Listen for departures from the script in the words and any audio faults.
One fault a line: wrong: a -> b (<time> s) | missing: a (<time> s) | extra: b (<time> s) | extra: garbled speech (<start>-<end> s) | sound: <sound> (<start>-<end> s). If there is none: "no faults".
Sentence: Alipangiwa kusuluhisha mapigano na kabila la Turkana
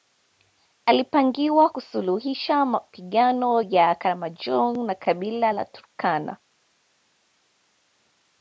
extra: ya Karamojong (3.6 s)